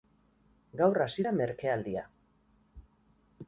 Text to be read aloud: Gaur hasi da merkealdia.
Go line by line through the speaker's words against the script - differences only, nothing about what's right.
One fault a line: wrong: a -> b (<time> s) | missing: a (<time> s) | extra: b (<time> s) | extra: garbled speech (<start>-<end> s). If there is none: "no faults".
no faults